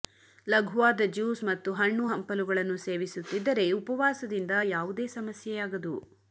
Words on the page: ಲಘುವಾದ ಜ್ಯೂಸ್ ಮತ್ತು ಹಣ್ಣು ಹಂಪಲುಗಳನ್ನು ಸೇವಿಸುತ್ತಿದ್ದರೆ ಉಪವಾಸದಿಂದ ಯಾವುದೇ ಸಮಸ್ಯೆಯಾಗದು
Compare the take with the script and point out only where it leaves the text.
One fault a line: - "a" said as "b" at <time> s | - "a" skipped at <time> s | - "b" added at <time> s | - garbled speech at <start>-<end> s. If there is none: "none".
none